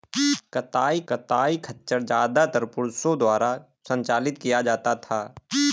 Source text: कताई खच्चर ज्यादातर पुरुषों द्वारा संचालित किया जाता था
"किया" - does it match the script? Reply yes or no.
yes